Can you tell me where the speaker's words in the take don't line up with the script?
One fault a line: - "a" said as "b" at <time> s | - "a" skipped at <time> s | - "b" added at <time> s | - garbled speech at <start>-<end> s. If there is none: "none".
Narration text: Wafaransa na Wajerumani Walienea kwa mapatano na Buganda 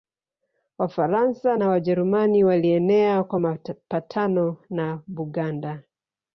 none